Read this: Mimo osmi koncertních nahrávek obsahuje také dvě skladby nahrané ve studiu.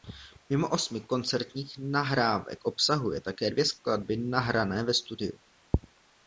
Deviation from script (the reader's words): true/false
false